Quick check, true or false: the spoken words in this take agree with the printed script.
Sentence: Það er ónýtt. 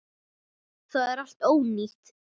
false